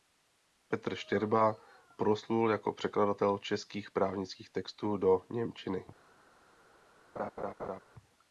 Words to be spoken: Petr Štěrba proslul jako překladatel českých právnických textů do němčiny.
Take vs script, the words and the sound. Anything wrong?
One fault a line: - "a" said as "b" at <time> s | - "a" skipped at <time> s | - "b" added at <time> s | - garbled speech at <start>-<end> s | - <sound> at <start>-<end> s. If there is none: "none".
- laugh at 7.2-7.8 s